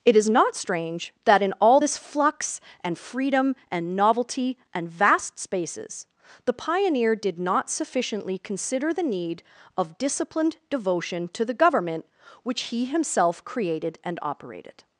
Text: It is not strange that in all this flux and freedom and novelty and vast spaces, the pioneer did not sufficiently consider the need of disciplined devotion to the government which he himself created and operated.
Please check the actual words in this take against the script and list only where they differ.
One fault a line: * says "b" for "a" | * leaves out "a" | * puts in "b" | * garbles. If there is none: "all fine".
all fine